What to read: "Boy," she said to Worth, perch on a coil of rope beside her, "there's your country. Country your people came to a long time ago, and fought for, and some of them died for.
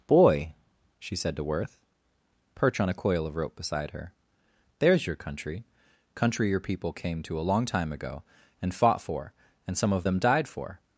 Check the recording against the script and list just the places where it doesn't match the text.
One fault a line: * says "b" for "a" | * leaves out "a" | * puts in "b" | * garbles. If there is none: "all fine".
all fine